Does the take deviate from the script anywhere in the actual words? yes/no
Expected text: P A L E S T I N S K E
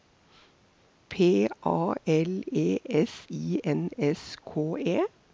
yes